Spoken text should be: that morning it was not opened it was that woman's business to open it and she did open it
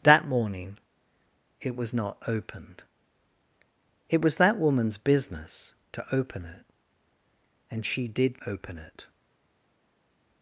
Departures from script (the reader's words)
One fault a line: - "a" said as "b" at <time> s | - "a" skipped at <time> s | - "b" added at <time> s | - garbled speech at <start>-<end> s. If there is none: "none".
none